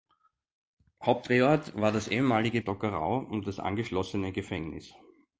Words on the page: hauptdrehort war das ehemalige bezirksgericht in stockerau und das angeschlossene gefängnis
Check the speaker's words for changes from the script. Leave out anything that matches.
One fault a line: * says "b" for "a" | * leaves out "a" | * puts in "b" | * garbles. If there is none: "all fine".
* leaves out "bezirksgericht in"